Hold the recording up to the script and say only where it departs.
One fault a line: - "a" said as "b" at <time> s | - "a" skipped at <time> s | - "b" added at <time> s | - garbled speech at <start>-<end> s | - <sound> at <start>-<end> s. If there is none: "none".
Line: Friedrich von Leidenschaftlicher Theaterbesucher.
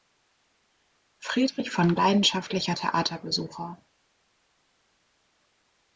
none